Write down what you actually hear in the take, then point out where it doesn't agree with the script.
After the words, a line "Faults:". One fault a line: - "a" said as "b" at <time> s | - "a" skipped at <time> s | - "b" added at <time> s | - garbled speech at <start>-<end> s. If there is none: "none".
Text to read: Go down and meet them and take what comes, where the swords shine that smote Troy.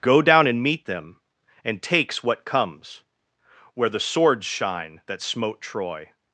Go down and meet them and takes what comes, where the swords shine that smote Troy.
Faults:
- "take" said as "takes" at 1.8 s